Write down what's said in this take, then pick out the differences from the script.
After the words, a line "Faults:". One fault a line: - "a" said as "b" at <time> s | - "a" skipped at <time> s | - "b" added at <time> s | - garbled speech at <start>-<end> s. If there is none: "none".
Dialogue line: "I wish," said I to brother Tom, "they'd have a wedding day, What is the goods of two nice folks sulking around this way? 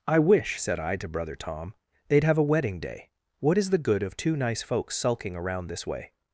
"I wish," said I to brother Tom, "they'd have a wedding day, What is the good of two nice folks sulking around this way?
Faults:
- "goods" said as "good" at 3.8 s